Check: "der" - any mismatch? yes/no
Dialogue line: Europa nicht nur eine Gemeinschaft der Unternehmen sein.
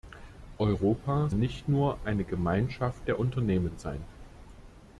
no